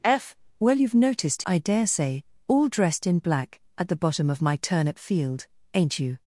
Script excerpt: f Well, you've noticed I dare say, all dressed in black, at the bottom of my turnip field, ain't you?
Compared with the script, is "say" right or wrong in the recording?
right